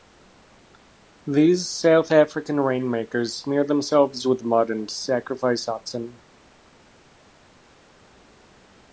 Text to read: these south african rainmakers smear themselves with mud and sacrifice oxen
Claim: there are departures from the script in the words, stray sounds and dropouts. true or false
false